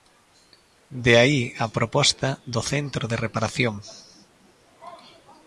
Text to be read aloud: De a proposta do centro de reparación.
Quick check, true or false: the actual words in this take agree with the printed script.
false